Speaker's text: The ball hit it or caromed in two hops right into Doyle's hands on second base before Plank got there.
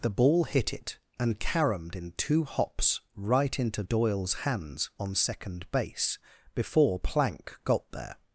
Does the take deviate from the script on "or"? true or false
true